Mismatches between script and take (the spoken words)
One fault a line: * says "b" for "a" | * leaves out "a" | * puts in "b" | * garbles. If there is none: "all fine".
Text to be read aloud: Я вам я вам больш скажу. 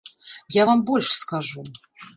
* leaves out "я вам"